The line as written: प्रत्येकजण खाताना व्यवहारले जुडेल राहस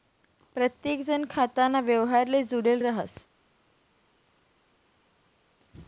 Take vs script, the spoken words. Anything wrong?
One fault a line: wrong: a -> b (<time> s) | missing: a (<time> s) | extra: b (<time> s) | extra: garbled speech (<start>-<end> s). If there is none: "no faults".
no faults